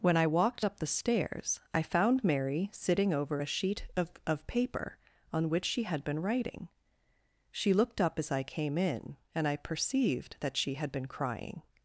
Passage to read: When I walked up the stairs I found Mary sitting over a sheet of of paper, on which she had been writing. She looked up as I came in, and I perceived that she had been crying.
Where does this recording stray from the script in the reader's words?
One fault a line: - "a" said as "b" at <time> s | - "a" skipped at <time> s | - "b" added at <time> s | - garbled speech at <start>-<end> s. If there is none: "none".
none